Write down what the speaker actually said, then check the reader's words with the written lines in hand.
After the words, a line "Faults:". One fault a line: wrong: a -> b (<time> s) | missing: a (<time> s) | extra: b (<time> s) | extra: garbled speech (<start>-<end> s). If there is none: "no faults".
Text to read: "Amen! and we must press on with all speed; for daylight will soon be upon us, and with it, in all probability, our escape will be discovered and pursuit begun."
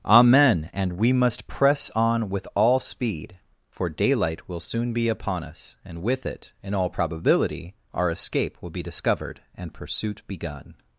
"Amen! and we must press on with all speed; for daylight will soon be upon us, and with it, in all probability, our escape will be discovered and pursuit begun."
Faults:
no faults